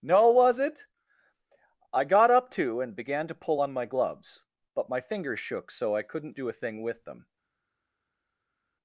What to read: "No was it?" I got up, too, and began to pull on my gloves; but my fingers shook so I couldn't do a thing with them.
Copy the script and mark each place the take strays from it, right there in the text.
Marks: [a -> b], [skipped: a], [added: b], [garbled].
"No was it?" I got up, too, and began to pull on my gloves; but my fingers shook so I couldn't do a thing with them.